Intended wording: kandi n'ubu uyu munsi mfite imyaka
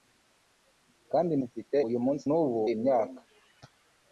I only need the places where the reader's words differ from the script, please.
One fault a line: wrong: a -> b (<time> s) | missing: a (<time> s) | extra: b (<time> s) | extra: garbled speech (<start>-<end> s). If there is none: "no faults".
wrong: n'ubu -> mfite (1.5 s)
wrong: mfite -> n'ubu (2.3 s)